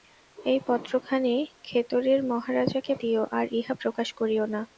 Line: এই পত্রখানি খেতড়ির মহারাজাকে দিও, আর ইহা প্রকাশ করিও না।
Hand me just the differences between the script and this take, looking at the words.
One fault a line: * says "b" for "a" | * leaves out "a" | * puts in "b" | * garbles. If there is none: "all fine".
all fine